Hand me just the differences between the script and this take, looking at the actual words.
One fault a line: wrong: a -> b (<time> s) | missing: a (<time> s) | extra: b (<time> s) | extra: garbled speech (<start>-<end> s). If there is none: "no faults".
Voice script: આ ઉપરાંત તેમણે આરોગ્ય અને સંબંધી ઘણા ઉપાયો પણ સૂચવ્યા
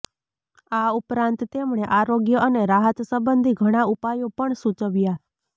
extra: રાહત (2.7 s)